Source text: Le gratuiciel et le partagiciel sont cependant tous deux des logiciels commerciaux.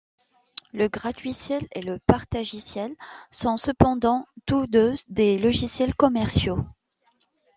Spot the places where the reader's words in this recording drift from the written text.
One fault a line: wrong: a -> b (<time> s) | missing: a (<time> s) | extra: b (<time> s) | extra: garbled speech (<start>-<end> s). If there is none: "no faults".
no faults